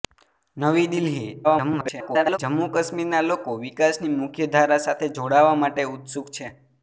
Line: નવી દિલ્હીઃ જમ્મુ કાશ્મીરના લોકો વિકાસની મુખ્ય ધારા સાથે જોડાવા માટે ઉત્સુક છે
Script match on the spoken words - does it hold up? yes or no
no